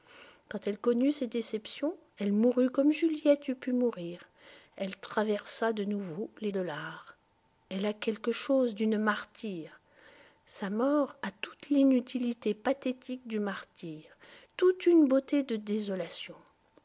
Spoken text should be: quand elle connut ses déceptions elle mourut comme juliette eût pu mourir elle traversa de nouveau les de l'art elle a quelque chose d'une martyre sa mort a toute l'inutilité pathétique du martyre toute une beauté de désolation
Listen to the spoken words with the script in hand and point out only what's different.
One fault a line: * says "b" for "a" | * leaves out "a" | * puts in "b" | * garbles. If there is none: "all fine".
all fine